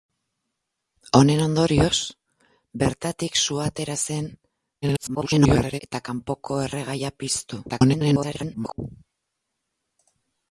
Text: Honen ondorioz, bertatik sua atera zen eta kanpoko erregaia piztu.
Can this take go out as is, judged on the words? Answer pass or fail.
fail